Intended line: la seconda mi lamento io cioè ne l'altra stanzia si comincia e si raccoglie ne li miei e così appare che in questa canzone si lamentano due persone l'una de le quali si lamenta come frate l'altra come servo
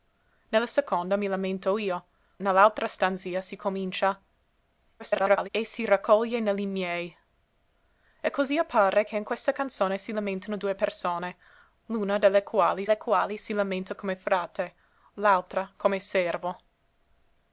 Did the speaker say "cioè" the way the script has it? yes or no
no